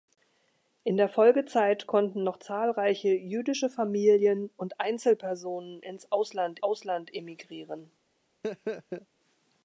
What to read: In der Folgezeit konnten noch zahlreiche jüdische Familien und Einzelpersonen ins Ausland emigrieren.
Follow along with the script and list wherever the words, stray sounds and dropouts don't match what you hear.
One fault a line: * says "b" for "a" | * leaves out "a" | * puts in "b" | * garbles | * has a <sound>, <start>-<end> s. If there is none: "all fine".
* puts in "Ausland"
* has a laugh, 8.4-9.1 s